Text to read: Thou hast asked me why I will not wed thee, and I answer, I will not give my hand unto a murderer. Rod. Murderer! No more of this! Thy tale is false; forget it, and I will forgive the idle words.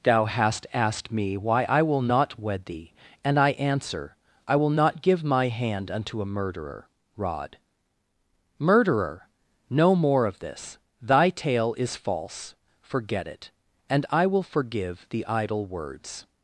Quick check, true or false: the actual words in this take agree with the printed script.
true